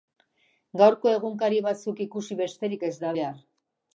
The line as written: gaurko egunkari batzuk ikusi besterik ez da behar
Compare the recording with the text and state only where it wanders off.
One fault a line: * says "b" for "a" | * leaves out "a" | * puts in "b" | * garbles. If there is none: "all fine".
all fine